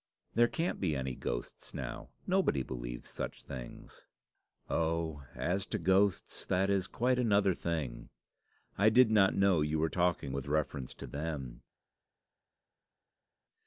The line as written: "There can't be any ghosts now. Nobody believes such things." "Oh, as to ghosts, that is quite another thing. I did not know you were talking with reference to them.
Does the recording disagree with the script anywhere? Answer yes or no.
no